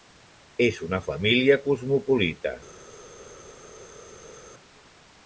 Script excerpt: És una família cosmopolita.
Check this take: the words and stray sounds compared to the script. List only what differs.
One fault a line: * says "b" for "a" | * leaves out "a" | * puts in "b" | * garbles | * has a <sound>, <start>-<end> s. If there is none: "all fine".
all fine